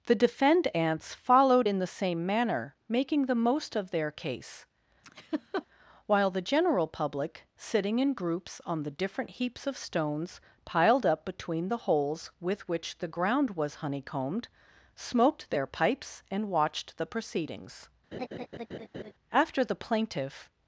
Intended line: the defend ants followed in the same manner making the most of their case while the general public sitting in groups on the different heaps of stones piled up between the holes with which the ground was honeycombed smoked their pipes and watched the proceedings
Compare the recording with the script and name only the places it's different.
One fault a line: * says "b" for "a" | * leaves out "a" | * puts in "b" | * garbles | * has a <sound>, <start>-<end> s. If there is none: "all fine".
* has a laugh, 5.0-5.7 s
* has a laugh, 18.1-19.1 s
* puts in "after the plaintiff"